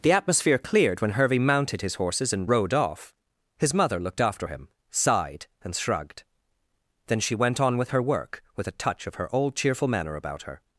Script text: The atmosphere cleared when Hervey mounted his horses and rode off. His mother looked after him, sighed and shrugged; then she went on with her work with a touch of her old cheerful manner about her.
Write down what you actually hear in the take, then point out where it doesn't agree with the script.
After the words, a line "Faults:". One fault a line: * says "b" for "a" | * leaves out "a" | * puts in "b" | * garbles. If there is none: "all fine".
The atmosphere cleared when Hervey mounted his horses and rode off. His mother looked after him, sighed and shrugged; then she went on with her work with a touch of her old cheerful manner about her.
Faults:
all fine